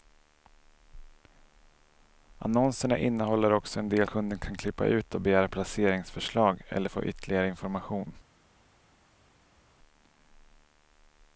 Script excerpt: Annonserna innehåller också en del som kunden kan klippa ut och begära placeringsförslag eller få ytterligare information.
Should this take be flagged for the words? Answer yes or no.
yes